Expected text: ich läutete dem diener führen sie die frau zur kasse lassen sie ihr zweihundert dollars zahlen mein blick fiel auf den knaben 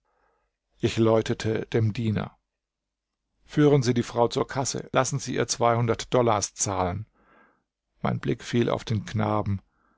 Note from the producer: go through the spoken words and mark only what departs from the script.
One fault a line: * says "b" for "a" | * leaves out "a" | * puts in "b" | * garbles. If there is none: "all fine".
all fine